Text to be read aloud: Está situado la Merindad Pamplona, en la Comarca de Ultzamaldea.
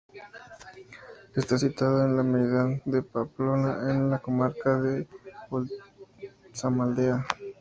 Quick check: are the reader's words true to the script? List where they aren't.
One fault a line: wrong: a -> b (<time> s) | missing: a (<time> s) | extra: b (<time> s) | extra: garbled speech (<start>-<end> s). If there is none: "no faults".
extra: en (2.0 s)
extra: de (2.8 s)